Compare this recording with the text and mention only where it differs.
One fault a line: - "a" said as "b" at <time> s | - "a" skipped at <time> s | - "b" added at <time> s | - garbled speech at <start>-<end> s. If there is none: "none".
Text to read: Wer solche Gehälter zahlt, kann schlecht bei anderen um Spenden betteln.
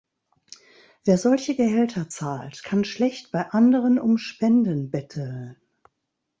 none